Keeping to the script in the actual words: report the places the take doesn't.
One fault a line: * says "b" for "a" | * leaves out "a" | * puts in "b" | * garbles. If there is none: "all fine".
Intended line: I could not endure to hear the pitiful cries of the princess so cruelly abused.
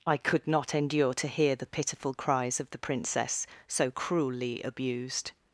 all fine